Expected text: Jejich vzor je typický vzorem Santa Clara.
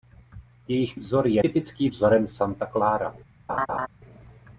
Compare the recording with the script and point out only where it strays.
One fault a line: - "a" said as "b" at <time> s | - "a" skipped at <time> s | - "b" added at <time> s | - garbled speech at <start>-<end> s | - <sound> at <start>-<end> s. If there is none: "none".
- laugh at 3.5-3.9 s